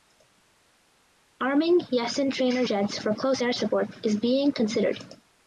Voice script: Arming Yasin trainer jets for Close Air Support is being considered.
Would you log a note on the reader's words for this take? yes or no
no